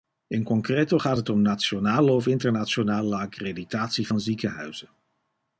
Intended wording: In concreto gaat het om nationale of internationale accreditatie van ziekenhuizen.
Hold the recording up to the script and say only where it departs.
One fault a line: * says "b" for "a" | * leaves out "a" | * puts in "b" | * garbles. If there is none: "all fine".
all fine